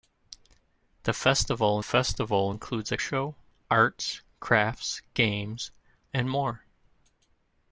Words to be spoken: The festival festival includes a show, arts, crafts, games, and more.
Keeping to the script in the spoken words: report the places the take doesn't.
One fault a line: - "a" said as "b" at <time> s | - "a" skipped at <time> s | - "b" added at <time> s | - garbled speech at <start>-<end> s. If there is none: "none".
none